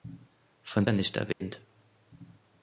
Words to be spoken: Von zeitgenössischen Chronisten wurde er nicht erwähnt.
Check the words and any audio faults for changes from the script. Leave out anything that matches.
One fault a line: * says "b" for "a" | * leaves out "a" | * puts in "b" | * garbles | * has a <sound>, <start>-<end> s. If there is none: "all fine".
* leaves out "zeitgenössischen Chronisten wurde"
* has a dropout, 1.3-1.4 s